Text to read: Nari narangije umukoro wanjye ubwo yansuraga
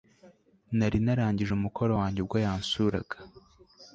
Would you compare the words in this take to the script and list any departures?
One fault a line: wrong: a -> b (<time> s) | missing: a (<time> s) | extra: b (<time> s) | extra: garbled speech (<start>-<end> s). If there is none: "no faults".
no faults